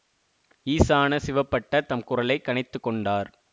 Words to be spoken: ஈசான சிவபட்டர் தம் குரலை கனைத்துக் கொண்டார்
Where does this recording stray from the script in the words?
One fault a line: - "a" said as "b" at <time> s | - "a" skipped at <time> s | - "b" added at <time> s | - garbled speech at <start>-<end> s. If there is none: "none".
none